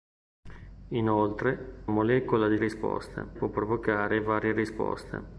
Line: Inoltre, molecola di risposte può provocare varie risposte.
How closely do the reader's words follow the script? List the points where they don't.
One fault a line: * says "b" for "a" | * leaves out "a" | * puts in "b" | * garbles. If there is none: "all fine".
all fine